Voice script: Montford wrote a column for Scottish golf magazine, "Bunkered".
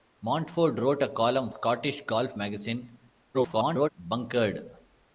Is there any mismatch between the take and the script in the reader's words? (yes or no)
yes